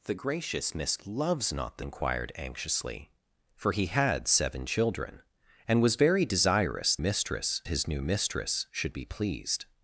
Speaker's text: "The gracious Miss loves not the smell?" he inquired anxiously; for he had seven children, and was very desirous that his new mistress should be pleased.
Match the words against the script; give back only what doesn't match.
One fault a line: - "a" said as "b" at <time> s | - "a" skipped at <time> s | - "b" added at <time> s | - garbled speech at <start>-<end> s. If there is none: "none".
- "smell he" skipped at 1.8 s
- "that" said as "mistress" at 7.0 s